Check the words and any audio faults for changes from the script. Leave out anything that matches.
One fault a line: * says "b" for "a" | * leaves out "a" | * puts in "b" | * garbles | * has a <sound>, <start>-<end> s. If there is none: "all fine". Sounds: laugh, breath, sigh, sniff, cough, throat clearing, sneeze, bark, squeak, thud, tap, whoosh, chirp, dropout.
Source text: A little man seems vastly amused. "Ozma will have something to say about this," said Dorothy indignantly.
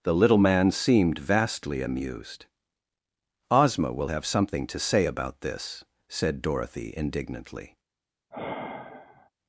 * says "The" for "A"
* says "seemed" for "seems"
* has a sigh, 8.3-9.3 s